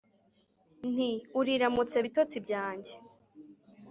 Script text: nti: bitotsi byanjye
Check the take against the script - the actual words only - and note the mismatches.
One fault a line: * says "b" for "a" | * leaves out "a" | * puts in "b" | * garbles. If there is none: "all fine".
* puts in "uriramutse"